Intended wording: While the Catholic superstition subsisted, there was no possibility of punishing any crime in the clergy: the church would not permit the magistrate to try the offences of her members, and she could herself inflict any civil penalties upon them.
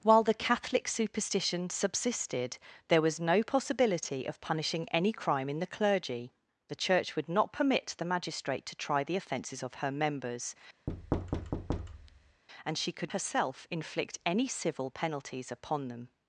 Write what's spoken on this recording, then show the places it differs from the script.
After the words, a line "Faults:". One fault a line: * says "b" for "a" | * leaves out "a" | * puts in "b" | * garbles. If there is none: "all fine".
While the Catholic superstition subsisted, there was no possibility of punishing any crime in the clergy: the church would not permit the magistrate to try the offences of her members, and she could herself inflict any civil penalties upon them.
Faults:
all fine